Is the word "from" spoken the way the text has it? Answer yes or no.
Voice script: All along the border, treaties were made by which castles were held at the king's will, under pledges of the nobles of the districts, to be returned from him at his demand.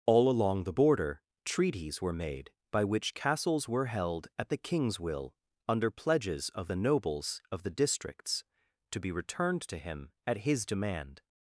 no